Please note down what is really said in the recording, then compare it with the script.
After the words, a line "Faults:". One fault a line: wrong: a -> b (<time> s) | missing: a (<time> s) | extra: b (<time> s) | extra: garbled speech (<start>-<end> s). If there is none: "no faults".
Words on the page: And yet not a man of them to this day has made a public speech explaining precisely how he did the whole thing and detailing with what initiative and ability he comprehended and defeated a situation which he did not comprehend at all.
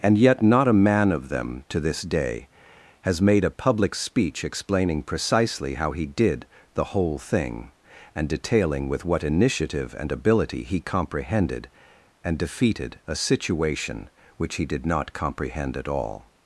And yet not a man of them to this day has made a public speech explaining precisely how he did the whole thing and detailing with what initiative and ability he comprehended and defeated a situation which he did not comprehend at all.
Faults:
no faults